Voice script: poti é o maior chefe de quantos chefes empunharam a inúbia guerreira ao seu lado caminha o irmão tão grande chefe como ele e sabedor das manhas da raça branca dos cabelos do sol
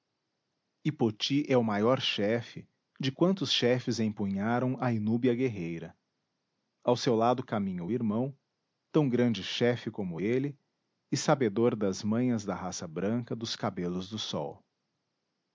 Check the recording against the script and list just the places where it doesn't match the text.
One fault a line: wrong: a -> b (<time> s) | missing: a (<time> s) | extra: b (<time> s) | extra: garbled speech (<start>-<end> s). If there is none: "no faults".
no faults